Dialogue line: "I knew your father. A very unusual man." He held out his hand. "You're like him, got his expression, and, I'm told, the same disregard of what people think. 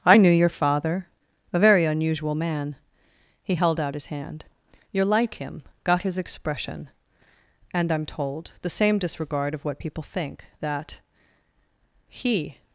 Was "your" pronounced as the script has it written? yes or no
yes